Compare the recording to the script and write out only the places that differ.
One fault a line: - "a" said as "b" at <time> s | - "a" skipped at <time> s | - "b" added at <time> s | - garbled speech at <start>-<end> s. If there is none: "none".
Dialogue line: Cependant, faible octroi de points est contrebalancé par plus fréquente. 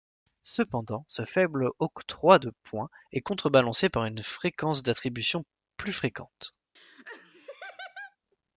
- "ce" added at 1.1 s
- "une fréquence d'attribution" added at 4.1 s